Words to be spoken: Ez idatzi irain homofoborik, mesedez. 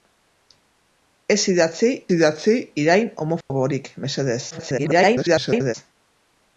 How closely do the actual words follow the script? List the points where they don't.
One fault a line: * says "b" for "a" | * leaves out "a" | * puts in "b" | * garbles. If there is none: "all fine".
* puts in "idatzi"
* garbles